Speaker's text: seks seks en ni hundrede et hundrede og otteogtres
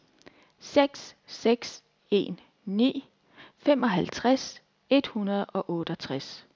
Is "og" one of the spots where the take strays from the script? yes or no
no